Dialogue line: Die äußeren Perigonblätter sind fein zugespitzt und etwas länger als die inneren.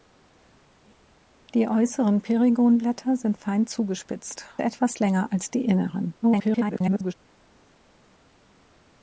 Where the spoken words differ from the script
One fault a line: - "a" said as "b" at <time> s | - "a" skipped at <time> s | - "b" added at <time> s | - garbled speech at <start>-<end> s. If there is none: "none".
- "und" skipped at 4.5 s
- garbled speech at 6.2-7.1 s